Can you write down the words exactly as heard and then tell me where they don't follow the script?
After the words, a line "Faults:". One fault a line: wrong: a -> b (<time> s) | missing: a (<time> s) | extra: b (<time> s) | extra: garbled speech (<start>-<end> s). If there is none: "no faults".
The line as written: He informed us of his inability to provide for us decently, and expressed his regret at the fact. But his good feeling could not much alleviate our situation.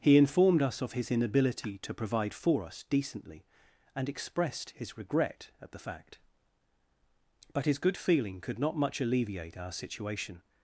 He informed us of his inability to provide for us decently, and expressed his regret at the fact. But his good feeling could not much alleviate our situation.
Faults:
no faults